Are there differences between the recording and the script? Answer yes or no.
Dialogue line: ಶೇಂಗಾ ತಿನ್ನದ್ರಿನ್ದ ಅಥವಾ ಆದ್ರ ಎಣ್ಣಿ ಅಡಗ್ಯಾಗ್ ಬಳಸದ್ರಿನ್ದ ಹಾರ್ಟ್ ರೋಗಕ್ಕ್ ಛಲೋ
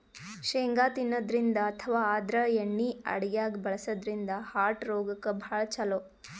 yes